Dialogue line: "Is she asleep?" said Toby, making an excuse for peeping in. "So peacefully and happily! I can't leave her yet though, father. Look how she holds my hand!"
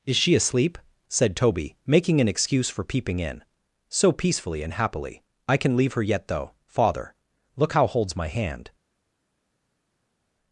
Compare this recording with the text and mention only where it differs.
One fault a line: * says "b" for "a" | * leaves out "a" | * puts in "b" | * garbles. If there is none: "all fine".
* says "can" for "can't"
* leaves out "she"